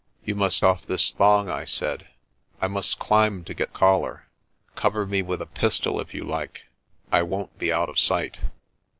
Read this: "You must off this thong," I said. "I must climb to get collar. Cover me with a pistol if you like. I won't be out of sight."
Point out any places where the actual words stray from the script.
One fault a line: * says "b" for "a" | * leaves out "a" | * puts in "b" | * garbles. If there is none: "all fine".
all fine